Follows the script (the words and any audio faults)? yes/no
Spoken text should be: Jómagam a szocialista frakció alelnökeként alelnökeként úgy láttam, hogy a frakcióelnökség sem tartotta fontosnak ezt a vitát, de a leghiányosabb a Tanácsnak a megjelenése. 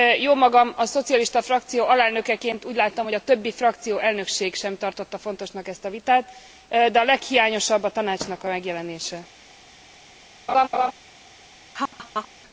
no